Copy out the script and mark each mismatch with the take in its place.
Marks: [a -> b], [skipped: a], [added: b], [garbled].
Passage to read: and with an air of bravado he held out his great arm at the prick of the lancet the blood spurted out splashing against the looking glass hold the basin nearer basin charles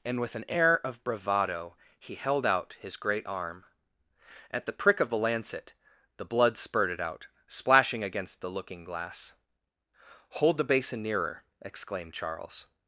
and with an air of bravado he held out his great arm at the prick of the lancet the blood spurted out splashing against the looking glass hold the basin nearer [basin -> exclaimed] charles